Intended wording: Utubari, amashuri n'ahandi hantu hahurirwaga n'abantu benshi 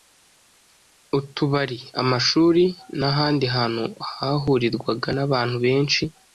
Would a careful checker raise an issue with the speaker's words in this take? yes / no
no